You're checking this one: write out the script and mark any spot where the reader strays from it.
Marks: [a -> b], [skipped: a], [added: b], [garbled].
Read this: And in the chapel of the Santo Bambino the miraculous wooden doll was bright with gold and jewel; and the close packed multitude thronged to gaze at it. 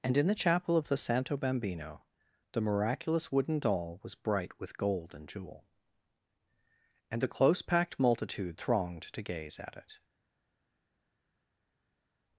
And in the chapel of the Santo Bambino the miraculous wooden doll was bright with gold and jewel; and the close packed multitude thronged to gaze at it.